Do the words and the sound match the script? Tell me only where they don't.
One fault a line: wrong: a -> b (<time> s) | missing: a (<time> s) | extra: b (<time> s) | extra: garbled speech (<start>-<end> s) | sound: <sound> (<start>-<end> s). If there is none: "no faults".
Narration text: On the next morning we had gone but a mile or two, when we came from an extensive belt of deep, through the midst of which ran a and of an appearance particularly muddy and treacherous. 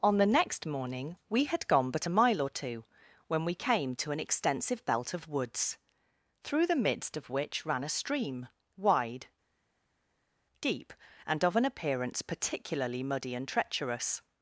wrong: from -> to (4.0 s)
wrong: deep -> woods (5.3 s)
extra: stream wide deep (7.9 s)